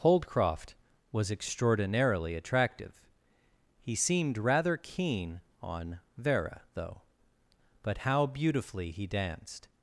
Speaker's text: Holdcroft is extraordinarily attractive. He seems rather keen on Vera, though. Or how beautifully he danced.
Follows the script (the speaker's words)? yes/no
no